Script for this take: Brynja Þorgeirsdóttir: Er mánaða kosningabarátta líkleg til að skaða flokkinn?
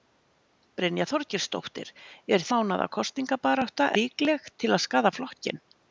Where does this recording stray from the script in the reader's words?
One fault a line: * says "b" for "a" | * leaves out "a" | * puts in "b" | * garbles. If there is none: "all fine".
all fine